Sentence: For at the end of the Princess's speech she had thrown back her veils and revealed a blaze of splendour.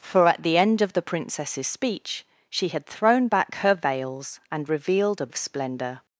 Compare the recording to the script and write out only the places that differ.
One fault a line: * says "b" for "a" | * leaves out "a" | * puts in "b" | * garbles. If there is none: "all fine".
* leaves out "blaze"